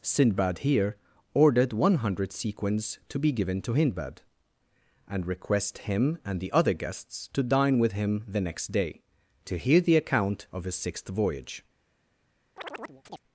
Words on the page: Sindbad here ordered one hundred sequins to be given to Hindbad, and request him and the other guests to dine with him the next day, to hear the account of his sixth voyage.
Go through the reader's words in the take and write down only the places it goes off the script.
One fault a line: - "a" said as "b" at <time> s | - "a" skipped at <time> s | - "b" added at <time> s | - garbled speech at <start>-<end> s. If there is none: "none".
none